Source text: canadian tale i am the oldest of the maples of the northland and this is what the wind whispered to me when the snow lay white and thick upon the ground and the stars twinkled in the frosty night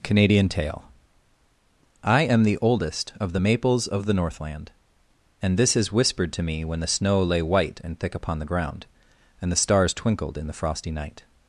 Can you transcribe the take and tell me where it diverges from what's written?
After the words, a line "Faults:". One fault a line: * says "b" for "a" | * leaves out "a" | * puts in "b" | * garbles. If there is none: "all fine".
canadian tale i am the oldest of the maples of the northland and this is whispered to me when the snow lay white and thick upon the ground and the stars twinkled in the frosty night
Faults:
* leaves out "what the wind"